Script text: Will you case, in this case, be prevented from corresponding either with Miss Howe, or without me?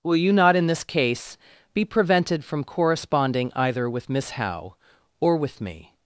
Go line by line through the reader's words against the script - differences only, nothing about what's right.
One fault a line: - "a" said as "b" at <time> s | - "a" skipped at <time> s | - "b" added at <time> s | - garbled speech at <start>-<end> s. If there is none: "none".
- "case" said as "not" at 0.3 s
- "without" said as "with" at 5.4 s